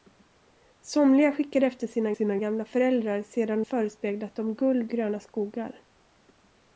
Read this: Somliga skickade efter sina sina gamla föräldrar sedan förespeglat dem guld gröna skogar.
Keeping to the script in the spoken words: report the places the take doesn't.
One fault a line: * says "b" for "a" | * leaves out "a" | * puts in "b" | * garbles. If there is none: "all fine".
all fine